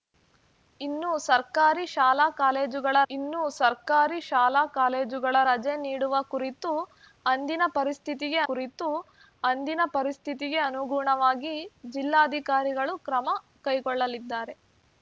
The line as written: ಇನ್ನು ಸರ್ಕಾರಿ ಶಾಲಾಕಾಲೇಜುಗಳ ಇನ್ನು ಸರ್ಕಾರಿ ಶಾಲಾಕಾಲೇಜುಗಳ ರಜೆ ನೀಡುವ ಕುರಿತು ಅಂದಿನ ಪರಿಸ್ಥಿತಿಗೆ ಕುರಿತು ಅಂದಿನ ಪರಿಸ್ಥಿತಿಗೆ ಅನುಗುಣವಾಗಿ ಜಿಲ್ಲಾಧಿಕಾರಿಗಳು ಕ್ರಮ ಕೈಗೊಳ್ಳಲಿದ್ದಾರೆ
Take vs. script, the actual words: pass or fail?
pass